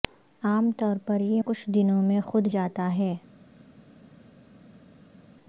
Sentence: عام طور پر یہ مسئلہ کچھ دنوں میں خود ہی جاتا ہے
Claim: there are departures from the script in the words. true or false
true